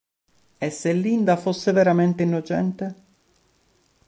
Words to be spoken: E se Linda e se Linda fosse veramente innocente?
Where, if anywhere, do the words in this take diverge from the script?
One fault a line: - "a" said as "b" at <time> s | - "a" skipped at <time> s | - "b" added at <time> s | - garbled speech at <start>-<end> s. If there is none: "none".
- "e se Linda" skipped at 1.4 s